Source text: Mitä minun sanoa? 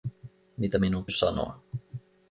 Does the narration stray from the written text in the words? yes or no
no